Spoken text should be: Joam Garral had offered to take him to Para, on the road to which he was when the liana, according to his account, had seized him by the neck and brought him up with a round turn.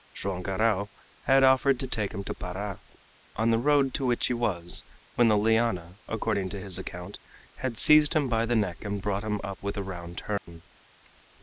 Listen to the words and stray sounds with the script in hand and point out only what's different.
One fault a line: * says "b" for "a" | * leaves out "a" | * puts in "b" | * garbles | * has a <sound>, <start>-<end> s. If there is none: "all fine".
* has a dropout, 10.4-10.5 s